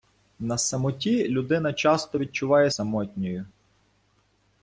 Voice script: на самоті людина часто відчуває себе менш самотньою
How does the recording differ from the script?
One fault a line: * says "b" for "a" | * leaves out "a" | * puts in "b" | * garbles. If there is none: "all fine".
* leaves out "себе менш"